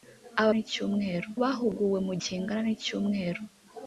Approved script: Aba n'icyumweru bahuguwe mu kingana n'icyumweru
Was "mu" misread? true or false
false